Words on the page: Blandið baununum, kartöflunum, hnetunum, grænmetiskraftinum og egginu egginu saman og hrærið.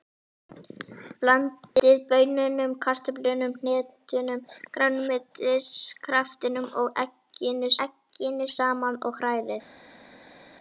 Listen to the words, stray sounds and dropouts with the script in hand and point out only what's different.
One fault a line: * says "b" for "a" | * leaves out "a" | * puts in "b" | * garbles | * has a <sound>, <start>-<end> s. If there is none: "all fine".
all fine